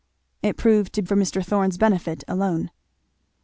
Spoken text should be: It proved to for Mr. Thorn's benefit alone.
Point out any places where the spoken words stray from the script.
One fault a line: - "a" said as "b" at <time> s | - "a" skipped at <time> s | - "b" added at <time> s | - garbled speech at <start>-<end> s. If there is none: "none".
none